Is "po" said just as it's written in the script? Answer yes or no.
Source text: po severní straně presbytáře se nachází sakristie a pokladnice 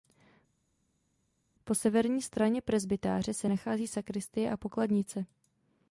yes